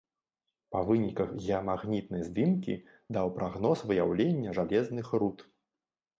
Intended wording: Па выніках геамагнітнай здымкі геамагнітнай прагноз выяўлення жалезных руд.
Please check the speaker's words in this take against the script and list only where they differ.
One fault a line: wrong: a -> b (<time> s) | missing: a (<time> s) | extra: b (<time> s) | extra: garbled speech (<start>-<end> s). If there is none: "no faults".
wrong: геамагнітнай -> даў (3.2 s)